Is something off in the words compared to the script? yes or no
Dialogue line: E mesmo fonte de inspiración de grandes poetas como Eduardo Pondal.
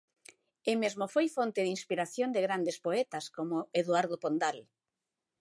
yes